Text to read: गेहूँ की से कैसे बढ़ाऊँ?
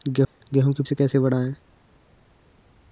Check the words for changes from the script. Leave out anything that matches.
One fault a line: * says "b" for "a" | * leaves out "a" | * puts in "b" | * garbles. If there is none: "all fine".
all fine